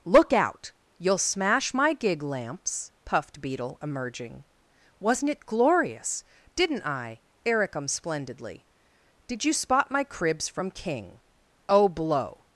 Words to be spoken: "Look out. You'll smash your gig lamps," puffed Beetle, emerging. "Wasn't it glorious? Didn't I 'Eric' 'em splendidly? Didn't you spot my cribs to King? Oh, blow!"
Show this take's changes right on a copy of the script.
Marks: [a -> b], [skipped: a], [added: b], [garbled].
"Look out. You'll smash [your -> my] gig lamps," puffed Beetle, emerging. "Wasn't it glorious? Didn't I 'Eric' 'em splendidly? [Didn't -> Did] you spot my cribs [to -> from] King? Oh, blow!"